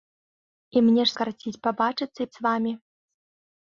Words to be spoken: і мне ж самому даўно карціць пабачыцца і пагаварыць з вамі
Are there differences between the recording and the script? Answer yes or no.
yes